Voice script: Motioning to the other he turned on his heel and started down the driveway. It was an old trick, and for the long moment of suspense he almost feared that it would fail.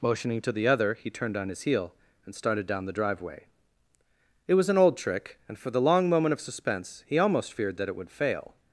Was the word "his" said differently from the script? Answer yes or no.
no